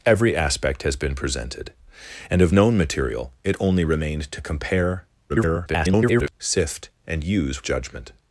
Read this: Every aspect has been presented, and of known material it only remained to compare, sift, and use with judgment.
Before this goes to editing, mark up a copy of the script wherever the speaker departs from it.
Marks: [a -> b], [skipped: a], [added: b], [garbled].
Every aspect has been presented, and of known material it only remained to compare, [garbled] sift, and use [skipped: with] judgment.